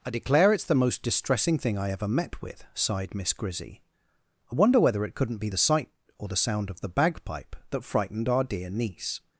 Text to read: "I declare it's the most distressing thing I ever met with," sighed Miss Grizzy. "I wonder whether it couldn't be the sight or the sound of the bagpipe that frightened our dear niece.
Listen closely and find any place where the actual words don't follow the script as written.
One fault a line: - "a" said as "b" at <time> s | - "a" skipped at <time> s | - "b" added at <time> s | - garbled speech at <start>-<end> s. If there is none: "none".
none